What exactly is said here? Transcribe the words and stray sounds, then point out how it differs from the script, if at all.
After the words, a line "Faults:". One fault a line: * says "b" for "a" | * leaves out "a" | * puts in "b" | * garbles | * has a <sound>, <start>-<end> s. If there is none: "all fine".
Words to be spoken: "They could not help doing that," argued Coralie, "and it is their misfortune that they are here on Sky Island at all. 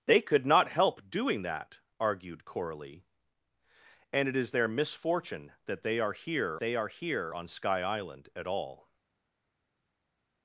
"They could not help doing that," argued Coralie, "and it is their misfortune that they are here they are here on Sky Island at all.
Faults:
* puts in "they are here"